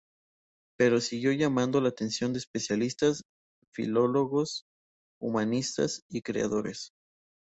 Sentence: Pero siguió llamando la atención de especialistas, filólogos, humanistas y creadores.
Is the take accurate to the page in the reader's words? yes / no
yes